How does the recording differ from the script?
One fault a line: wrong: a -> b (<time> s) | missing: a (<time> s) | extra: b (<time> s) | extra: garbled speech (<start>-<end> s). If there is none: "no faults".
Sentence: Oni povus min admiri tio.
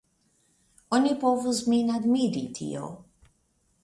no faults